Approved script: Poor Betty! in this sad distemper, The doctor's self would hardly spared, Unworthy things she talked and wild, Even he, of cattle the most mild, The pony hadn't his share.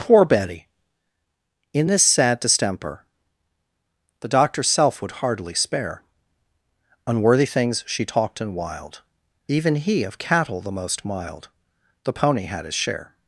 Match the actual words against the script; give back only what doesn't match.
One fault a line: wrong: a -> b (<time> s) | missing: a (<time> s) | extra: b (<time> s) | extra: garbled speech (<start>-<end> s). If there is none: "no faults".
wrong: spared -> spare (5.5 s)
wrong: hadn't -> had (12.4 s)